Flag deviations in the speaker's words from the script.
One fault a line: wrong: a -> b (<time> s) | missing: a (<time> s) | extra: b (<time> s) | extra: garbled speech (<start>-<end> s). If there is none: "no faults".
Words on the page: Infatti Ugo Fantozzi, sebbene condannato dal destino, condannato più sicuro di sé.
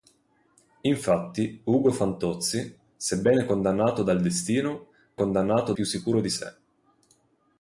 no faults